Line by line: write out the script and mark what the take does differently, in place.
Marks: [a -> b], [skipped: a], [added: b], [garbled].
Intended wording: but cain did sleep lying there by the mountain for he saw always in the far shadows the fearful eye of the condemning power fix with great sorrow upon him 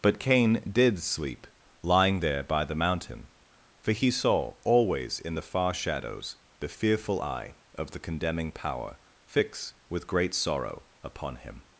but cain did sleep lying there by the mountain for he saw always in the far shadows the fearful eye of the condemning power fix with great sorrow upon him